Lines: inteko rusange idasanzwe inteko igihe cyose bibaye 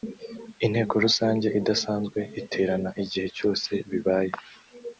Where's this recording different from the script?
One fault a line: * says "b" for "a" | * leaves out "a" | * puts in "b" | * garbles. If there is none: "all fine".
* says "iterana" for "inteko"